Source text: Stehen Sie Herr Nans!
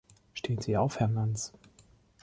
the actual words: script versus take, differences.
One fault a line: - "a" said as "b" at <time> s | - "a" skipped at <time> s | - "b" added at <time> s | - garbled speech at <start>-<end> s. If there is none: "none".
- "auf" added at 0.8 s